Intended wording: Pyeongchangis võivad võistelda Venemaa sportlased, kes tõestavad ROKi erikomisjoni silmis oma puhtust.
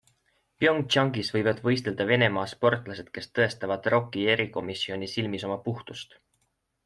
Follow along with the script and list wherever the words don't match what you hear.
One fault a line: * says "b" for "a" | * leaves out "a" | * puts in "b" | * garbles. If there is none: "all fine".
all fine